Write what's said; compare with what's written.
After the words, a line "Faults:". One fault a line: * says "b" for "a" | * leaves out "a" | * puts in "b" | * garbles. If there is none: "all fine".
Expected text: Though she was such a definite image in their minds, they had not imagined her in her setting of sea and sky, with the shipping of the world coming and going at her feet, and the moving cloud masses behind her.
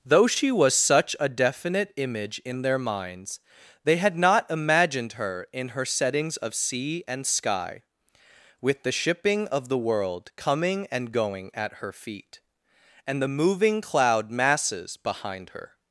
Though she was such a definite image in their minds, they had not imagined her in her settings of sea and sky, with the shipping of the world coming and going at her feet, and the moving cloud masses behind her.
Faults:
* says "settings" for "setting"